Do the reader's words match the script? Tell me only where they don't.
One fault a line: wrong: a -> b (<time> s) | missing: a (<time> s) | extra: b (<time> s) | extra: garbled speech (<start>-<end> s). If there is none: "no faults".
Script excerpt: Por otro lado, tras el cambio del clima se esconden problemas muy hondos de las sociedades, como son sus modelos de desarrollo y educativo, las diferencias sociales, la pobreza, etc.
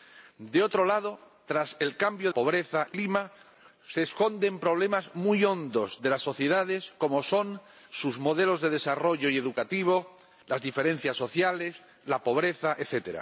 wrong: del -> pobreza (2.3 s)